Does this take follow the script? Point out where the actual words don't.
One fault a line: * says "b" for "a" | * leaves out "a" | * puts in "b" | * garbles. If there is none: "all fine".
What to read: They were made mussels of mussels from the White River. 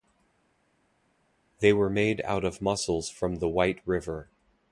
* says "out" for "mussels"